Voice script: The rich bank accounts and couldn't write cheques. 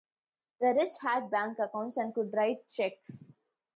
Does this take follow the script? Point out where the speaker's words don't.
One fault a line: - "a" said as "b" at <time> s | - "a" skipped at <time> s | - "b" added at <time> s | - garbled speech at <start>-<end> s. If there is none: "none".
- "had" added at 1.0 s
- "couldn't" said as "could" at 2.1 s